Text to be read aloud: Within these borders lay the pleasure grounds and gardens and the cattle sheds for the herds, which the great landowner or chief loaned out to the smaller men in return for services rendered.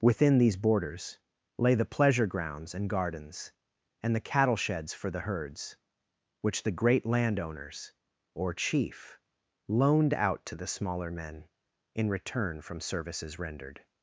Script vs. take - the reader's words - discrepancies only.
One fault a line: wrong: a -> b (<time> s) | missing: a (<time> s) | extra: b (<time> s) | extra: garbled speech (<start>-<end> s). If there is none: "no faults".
wrong: landowner -> landowners (7.0 s)
wrong: for -> from (12.6 s)